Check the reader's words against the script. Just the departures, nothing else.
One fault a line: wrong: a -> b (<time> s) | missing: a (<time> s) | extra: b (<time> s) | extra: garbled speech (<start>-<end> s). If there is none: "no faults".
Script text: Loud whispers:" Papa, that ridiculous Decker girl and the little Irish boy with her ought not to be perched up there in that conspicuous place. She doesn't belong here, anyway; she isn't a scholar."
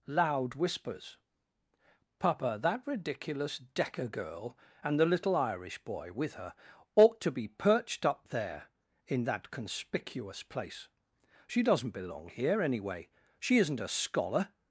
missing: not (7.2 s)